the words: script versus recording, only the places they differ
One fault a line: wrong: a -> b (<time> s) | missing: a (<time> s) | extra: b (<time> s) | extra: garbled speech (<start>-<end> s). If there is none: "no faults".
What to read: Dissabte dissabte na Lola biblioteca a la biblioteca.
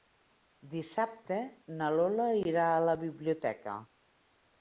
missing: dissabte (1.4 s)
wrong: biblioteca -> irà (2.4 s)